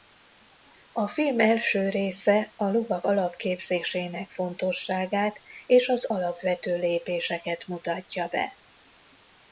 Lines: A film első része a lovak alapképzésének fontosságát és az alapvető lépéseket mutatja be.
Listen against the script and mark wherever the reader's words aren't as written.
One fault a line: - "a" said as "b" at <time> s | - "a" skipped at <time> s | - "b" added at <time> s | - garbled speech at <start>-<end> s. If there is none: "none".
none